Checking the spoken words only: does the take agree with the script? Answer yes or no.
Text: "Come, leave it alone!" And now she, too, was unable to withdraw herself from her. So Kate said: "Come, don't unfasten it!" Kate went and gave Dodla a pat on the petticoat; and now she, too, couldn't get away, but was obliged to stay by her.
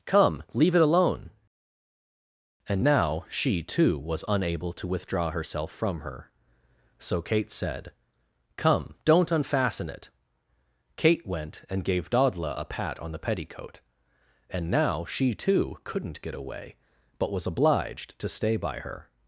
yes